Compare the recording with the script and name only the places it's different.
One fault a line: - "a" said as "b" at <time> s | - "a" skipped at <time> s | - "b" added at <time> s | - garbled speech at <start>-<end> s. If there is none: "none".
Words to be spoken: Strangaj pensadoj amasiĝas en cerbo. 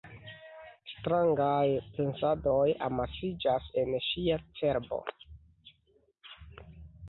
- "ŝia" added at 4.1 s